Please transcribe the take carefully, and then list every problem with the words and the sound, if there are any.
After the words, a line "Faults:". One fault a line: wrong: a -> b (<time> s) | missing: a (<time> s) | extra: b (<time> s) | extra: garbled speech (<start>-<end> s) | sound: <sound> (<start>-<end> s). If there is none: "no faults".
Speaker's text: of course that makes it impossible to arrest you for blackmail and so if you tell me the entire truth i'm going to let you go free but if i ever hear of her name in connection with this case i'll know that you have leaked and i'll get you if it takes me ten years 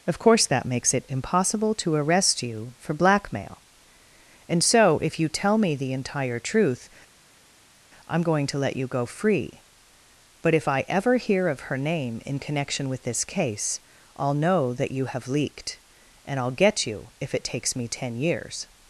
of course that makes it impossible to arrest you for blackmail and so if you tell me the entire truth i'm going to let you go free but if i ever hear of her name in connection with this case i'll know that you have leaked and i'll get you if it takes me ten years
Faults:
no faults